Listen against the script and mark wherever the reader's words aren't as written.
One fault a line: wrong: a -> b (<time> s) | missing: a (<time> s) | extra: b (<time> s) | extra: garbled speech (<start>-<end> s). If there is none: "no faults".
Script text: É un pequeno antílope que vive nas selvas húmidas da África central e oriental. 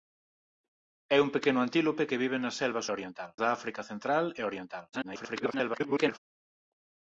wrong: húmidas -> oriental (2.9 s)
extra: garbled speech (4.9-6.2 s)